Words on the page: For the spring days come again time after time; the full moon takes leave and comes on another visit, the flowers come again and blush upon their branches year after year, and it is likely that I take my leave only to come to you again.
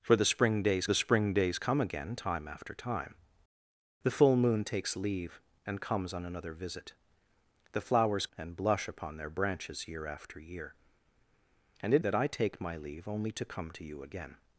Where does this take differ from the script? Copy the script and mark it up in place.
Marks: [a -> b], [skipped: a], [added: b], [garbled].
For the spring days [added: the spring days] come again time after time; the full moon takes leave and comes on another visit, the flowers [skipped: come again] and blush upon their branches year after year, and it [skipped: is likely] that I take my leave only to come to you again.